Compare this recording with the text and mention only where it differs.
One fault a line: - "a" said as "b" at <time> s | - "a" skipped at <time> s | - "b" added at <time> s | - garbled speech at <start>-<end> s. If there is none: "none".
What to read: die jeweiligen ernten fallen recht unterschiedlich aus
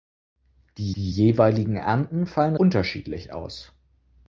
- "die" added at 1.0 s
- "recht" skipped at 2.6 s